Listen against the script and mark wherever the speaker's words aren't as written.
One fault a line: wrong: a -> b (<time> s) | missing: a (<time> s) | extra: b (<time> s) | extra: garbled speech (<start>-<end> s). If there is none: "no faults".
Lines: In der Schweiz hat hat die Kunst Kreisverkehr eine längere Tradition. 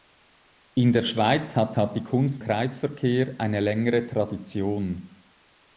no faults